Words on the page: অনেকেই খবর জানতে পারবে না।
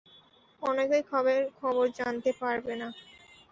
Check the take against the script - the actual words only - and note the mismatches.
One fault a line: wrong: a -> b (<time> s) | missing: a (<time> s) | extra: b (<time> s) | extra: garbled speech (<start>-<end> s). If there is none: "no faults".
no faults